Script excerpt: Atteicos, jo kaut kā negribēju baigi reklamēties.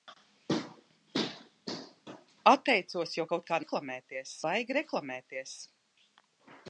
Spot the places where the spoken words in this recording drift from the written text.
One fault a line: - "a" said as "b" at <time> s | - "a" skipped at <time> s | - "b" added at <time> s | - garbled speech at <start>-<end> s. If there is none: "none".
- "negribēju" said as "reklamēties" at 3.6 s